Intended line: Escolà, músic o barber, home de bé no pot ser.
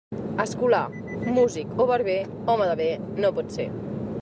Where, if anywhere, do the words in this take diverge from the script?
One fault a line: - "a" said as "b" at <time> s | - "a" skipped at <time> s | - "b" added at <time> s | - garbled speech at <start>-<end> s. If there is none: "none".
none